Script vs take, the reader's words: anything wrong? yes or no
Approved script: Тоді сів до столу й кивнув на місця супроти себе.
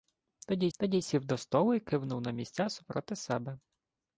yes